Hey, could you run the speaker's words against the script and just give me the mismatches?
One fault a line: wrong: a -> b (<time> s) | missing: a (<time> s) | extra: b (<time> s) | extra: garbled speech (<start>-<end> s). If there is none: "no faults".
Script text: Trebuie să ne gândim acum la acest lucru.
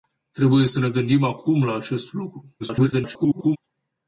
extra: garbled speech (2.6-3.6 s)